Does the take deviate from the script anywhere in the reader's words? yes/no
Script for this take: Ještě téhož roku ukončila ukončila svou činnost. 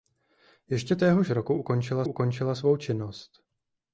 no